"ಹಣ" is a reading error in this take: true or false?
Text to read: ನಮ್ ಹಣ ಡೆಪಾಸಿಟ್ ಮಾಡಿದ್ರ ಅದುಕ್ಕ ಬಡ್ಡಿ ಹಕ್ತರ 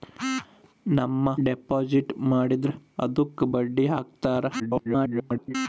true